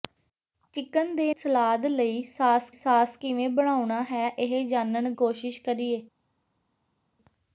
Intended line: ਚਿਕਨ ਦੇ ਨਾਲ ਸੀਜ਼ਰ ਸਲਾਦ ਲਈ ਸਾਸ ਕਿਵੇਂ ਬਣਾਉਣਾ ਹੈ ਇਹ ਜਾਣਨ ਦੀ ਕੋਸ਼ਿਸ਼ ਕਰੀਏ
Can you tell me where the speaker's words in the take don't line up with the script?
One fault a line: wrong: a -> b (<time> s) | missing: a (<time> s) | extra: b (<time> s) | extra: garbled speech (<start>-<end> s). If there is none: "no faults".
missing: ਨਾਲ ਸੀਜ਼ਰ (1.3 s)
extra: ਸਾਸ (2.7 s)
missing: ਦੀ (5.1 s)